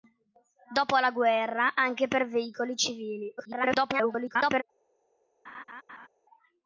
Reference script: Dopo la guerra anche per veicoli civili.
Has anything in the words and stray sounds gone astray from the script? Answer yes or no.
yes